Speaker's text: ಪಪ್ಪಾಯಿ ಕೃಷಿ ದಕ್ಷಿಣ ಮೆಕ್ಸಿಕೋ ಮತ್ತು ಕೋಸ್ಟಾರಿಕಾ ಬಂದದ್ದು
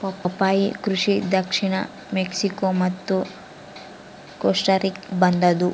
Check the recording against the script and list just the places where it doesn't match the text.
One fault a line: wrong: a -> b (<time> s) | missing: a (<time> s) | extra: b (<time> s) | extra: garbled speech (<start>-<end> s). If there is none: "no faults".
no faults